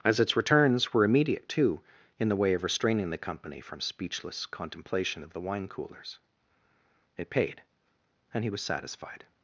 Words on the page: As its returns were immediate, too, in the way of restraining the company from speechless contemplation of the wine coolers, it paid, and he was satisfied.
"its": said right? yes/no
yes